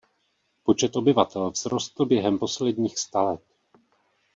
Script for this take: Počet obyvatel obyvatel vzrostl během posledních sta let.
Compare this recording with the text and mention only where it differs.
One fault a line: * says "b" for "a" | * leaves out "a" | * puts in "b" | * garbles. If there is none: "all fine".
* leaves out "obyvatel"